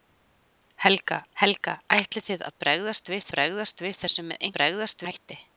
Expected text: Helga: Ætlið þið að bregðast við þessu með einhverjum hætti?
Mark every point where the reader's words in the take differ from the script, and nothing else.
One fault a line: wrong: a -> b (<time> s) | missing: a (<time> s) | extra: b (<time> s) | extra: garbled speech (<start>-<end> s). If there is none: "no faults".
extra: helga (1.4 s)
extra: bregðast við (3.4 s)
wrong: einhverjum -> bregðast (4.6 s)